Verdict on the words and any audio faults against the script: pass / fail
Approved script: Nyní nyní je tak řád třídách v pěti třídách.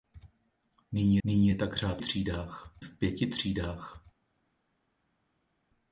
pass